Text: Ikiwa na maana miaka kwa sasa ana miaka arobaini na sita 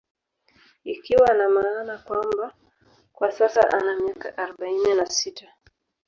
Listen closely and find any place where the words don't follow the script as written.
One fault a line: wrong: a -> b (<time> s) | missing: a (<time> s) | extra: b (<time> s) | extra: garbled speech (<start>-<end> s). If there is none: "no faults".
wrong: miaka -> kwamba (2.0 s)